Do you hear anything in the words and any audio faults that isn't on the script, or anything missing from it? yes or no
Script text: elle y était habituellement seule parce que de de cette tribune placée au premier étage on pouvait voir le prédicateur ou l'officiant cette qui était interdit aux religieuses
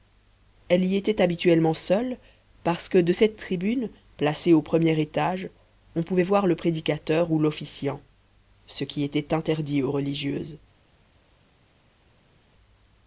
yes